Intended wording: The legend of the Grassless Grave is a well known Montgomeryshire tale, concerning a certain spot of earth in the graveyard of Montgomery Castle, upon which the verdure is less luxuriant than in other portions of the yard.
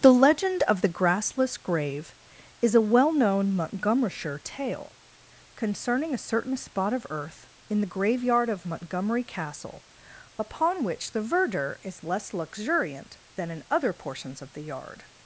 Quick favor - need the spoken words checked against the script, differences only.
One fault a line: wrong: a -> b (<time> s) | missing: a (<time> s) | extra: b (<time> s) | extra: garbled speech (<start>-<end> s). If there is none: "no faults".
no faults